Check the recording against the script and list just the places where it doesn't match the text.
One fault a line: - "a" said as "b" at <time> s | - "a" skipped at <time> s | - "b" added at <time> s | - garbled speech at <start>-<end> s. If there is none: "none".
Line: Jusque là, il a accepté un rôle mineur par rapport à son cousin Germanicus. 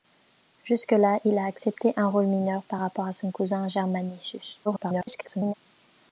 - garbled speech at 4.6-5.5 s